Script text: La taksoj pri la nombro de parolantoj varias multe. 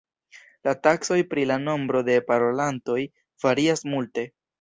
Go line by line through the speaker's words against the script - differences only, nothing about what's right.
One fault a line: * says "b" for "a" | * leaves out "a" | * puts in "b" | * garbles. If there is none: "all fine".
all fine